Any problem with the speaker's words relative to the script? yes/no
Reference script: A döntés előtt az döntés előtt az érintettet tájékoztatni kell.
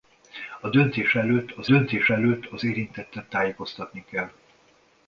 no